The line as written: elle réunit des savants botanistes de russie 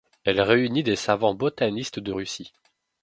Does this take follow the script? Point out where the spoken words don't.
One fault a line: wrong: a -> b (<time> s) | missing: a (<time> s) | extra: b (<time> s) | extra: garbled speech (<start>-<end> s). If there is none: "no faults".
no faults